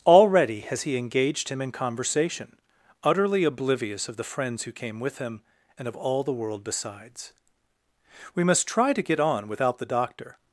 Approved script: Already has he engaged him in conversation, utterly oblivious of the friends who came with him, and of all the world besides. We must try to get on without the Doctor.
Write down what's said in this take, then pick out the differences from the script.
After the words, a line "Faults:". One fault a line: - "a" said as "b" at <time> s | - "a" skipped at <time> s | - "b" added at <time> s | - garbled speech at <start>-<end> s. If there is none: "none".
Already has he engaged him in conversation, utterly oblivious of the friends who came with him, and of all the world besides. We must try to get on without the Doctor.
Faults:
none